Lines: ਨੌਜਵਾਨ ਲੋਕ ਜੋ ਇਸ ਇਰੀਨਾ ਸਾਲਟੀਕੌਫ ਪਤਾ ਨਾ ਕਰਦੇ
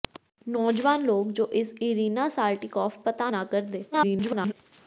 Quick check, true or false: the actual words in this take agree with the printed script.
false